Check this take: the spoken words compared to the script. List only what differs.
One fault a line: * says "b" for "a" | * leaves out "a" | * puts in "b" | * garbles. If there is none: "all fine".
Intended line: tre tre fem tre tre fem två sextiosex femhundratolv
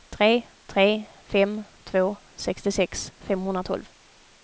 * leaves out "tre tre fem"